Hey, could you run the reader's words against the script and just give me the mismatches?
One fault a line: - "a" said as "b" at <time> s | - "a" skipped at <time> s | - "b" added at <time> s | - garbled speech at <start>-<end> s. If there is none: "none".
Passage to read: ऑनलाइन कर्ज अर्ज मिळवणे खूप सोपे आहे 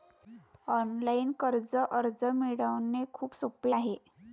none